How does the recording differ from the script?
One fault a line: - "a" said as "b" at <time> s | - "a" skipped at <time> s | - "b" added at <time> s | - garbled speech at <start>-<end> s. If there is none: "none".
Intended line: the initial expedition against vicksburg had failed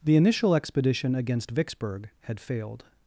none